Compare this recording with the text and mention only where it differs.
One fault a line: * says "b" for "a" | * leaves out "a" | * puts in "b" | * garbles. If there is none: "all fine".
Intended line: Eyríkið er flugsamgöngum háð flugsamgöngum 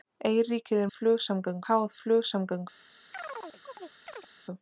all fine